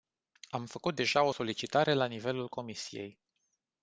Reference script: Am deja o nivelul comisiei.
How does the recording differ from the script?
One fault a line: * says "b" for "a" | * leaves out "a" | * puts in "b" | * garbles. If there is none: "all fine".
* puts in "făcut"
* puts in "solicitare la"